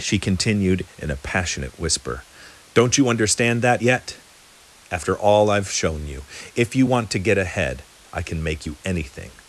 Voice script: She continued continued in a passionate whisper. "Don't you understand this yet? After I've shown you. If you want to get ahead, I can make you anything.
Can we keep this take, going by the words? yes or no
no